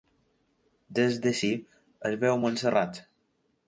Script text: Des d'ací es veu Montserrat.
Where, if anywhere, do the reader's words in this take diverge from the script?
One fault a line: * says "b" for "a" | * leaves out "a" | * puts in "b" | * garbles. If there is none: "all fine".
all fine